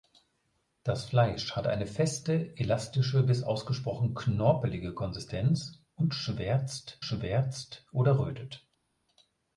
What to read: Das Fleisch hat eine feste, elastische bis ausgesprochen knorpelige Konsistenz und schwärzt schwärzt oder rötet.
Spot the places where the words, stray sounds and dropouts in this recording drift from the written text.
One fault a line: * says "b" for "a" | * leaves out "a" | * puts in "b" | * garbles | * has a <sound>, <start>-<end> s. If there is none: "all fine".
all fine